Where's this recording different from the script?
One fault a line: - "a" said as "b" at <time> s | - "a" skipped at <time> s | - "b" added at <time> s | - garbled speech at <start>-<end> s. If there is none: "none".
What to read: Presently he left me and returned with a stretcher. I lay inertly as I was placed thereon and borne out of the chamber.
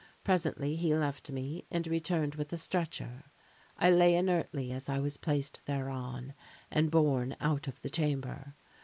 none